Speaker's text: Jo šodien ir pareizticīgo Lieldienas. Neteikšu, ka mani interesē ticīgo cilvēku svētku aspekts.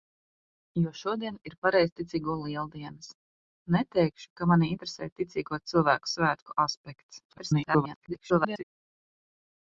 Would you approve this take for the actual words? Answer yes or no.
no